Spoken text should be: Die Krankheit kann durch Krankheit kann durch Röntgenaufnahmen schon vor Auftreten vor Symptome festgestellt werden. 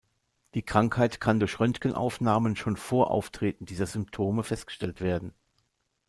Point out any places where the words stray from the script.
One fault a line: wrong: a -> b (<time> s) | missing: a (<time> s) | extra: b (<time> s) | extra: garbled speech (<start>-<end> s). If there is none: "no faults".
missing: Krankheit kann durch (1.6 s)
wrong: vor -> dieser (3.6 s)